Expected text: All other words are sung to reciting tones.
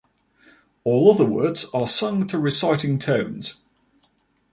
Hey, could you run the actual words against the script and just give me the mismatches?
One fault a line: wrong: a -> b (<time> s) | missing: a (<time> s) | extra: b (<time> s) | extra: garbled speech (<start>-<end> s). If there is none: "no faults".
no faults